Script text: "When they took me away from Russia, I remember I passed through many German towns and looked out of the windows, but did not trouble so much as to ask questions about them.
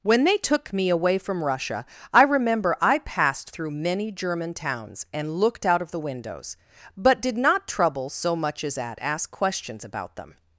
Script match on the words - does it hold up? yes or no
no